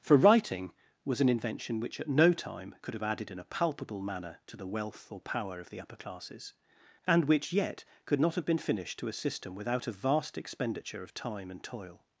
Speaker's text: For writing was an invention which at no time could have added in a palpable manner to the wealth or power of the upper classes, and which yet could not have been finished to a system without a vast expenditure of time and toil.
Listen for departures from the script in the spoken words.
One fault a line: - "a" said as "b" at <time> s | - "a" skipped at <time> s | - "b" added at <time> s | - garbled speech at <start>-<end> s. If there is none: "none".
none